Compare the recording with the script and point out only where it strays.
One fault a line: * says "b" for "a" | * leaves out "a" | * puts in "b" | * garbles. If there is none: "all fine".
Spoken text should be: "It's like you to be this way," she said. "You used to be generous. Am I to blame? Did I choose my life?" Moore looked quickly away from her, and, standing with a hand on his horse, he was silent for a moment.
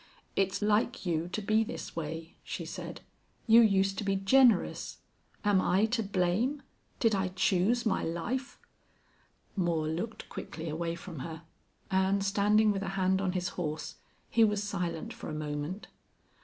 all fine